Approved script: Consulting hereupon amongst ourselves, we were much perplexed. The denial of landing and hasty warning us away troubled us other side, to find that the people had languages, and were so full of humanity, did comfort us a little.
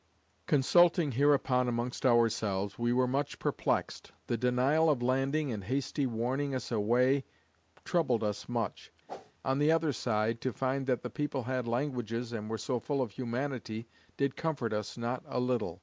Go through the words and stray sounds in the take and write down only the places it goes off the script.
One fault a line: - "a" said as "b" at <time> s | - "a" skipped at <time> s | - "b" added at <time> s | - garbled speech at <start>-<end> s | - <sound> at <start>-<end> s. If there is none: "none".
- "much on the" added at 8.5 s
- whoosh at 9.1-9.3 s
- "not" added at 15.0 s